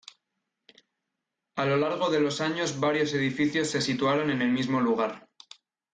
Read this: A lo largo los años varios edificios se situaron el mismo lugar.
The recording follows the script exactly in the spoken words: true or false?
false